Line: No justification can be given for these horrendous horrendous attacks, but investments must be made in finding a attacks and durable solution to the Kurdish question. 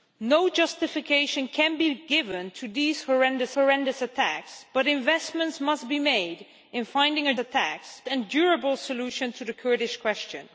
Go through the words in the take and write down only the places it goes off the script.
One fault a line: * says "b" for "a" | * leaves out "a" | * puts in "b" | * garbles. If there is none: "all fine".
all fine